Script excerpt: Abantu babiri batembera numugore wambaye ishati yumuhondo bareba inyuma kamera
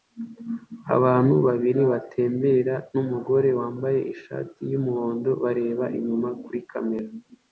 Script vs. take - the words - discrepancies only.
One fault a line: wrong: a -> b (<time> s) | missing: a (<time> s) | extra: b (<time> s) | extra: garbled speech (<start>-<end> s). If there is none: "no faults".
extra: kuri (6.4 s)